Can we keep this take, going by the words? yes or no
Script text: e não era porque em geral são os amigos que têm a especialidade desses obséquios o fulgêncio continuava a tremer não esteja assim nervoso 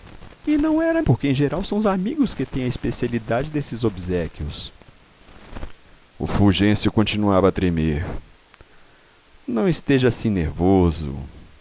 yes